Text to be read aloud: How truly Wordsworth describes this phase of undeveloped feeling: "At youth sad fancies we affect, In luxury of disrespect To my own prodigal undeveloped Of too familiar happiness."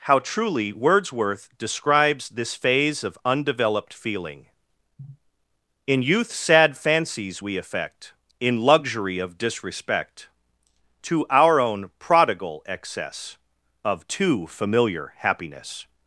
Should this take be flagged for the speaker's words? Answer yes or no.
yes